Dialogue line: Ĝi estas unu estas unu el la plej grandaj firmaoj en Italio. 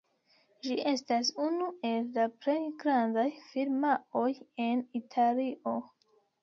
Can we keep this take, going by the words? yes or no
no